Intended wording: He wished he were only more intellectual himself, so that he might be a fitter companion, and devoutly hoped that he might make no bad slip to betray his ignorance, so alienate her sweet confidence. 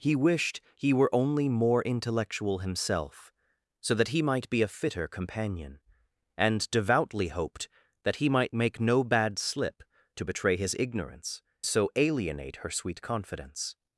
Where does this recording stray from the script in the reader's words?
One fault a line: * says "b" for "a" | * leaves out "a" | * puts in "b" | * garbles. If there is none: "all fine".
all fine